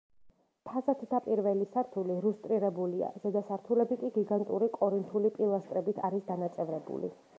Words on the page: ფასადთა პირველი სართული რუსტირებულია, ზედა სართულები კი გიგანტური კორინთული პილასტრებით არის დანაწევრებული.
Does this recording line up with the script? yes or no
yes